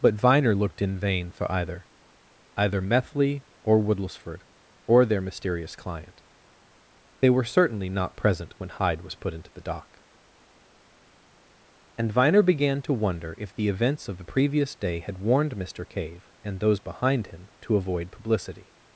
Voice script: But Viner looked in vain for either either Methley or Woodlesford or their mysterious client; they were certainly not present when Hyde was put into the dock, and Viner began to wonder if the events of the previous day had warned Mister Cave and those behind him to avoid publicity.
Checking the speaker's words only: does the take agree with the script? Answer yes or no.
yes